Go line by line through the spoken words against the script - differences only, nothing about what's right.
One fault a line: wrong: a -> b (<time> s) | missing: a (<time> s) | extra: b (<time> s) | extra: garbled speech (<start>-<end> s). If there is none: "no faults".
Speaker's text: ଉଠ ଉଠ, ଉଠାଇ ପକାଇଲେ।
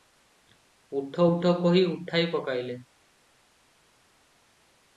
extra: କହି (1.6 s)